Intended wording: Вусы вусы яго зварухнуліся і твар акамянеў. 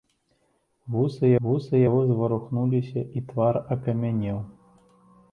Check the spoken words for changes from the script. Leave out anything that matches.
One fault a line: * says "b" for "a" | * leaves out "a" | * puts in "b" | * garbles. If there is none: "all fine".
all fine